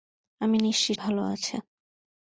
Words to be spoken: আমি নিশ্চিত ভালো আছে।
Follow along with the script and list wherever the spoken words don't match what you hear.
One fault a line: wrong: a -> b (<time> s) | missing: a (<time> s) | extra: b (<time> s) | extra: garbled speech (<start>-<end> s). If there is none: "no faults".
no faults